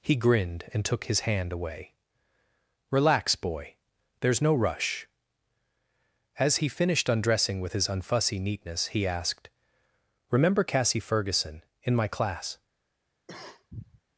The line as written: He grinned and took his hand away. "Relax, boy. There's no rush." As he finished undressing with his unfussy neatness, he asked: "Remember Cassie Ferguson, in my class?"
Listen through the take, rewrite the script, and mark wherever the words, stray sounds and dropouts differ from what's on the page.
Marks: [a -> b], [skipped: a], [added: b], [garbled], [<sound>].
He grinned and took his hand away. "Relax, boy. There's no rush." As he finished undressing with his unfussy neatness, he asked: "Remember Cassie Ferguson, in my class?" [cough]